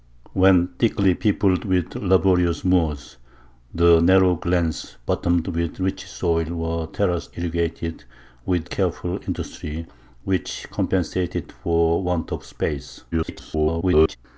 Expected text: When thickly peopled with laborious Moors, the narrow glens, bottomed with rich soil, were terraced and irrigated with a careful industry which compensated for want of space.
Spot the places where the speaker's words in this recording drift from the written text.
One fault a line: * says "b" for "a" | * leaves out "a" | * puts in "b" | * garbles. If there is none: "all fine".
* leaves out "and"
* leaves out "a"
* garbles